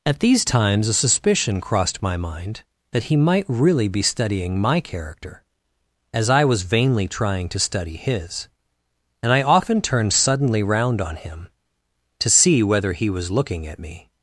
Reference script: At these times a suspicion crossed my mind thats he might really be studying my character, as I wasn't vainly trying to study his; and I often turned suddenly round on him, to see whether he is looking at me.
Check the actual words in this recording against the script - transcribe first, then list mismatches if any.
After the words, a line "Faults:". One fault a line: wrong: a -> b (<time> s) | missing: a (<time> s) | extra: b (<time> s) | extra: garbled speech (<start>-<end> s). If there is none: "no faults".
At these times a suspicion crossed my mind that he might really be studying my character, as I was vainly trying to study his; and I often turned suddenly round on him, to see whether he was looking at me.
Faults:
wrong: thats -> that (2.9 s)
wrong: wasn't -> was (6.4 s)
wrong: is -> was (13.1 s)